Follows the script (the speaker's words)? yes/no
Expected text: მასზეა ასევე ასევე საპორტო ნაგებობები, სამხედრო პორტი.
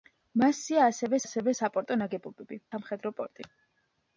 yes